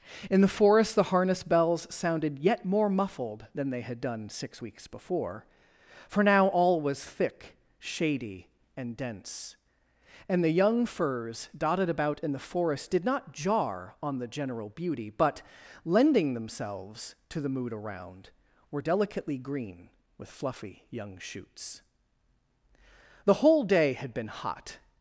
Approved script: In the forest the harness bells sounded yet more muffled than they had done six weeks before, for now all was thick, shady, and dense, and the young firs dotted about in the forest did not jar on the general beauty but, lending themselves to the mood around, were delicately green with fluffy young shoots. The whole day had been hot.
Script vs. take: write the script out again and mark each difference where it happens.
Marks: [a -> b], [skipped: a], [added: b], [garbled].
In the forest the harness bells sounded yet more muffled than they had done six weeks before, for now all was thick, shady, and dense, and the young firs dotted about in the forest did not jar on the general beauty but, lending themselves to the mood around, were delicately green with fluffy young shoots. The whole day had been hot.